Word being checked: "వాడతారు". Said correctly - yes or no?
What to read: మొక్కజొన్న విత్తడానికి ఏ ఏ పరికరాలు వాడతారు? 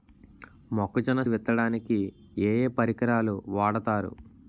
yes